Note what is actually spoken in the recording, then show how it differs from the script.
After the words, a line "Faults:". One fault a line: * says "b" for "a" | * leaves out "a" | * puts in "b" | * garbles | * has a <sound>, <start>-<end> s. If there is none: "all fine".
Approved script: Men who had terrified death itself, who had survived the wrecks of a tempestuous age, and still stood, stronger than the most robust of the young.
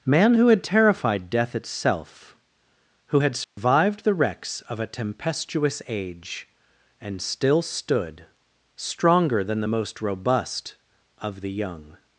Man who had terrified death itself, who had survived the wrecks of a tempestuous age, and still stood, stronger than the most robust of the young.
Faults:
* says "Man" for "Men"
* has a dropout, 3.4-3.6 s